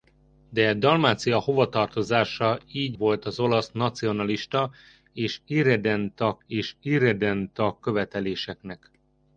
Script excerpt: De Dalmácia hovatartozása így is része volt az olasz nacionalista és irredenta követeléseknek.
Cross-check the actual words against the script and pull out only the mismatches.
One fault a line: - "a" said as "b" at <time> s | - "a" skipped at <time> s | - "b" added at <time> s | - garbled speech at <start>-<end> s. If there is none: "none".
- "is része" skipped at 3.0 s
- "és irredenta" added at 6.5 s